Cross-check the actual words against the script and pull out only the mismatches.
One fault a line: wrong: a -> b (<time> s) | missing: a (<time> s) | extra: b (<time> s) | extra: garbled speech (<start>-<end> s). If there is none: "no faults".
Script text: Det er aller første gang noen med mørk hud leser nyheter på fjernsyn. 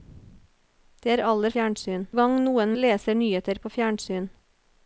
wrong: første -> fjernsyn (1.5 s)
missing: med mørk hud (2.7 s)